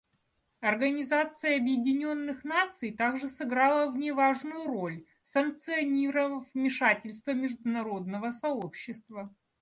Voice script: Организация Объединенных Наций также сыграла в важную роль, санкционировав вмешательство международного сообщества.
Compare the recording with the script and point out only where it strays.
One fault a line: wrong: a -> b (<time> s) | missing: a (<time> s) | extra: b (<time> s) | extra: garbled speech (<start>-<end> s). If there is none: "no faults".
extra: ней (4.0 s)